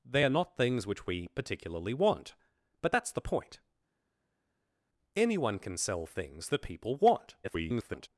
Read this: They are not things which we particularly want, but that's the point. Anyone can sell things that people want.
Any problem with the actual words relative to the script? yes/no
yes